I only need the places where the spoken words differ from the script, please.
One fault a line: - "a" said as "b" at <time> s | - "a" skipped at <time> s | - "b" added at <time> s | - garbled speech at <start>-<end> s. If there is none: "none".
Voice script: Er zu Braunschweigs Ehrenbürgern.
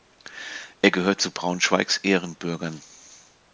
- "gehört" added at 0.9 s